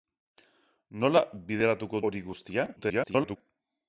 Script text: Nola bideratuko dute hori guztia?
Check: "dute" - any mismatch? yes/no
yes